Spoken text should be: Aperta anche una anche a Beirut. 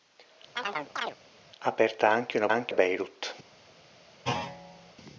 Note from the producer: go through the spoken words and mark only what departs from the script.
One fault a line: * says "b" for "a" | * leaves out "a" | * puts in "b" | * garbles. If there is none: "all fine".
all fine